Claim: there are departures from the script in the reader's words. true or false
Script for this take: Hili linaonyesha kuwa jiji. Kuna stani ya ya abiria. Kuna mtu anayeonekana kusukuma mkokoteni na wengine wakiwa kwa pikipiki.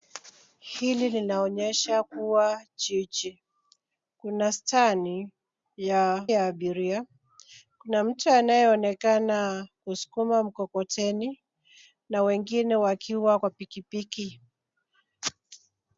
false